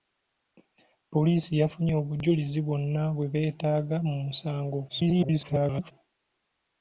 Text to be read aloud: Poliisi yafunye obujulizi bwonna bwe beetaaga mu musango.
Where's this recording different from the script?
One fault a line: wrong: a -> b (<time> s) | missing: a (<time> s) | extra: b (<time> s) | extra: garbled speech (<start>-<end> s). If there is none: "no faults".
extra: garbled speech (4.9-5.9 s)